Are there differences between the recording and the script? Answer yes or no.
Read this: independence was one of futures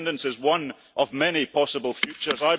yes